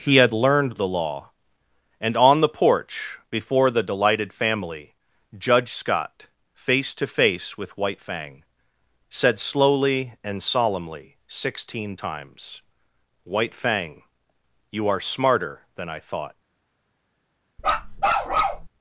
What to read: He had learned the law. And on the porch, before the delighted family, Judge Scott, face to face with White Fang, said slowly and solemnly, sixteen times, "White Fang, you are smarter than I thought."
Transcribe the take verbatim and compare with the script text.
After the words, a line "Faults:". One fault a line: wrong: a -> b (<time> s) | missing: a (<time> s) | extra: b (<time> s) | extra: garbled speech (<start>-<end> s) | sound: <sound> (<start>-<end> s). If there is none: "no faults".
He had learned the law. And on the porch, before the delighted family, Judge Scott, face to face with White Fang, said slowly and solemnly, sixteen times, "White Fang, you are smarter than I thought."
Faults:
sound: bark (17.6-18.7 s)